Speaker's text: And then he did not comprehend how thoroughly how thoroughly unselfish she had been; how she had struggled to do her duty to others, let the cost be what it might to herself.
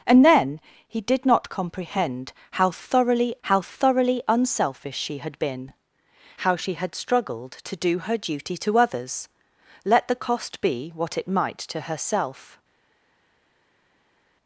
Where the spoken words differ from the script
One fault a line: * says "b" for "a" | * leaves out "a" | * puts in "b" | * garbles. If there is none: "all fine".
all fine